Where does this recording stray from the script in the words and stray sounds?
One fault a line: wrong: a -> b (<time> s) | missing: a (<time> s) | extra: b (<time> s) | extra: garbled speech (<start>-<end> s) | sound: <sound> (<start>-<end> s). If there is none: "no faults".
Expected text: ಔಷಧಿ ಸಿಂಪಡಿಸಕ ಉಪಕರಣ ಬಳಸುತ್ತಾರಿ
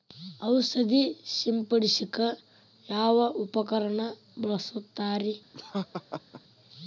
extra: ಯಾವ (2.9 s)
sound: laugh (5.5-6.4 s)